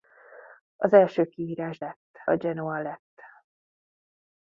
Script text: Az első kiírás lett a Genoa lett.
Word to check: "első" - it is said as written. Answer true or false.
true